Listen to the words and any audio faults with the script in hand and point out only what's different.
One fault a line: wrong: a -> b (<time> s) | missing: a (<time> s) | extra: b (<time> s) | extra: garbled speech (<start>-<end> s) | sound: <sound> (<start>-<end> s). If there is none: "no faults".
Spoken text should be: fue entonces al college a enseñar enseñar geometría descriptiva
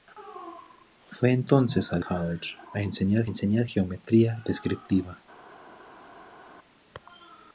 no faults